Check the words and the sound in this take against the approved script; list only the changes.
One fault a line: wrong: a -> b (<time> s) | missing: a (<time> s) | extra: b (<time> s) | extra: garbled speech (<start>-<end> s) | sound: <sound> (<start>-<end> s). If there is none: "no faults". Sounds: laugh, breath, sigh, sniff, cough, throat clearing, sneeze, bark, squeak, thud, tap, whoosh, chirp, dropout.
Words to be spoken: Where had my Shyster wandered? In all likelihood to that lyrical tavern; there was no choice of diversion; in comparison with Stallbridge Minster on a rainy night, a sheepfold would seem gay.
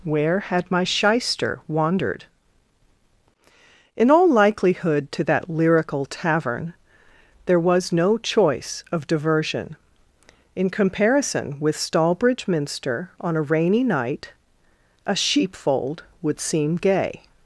no faults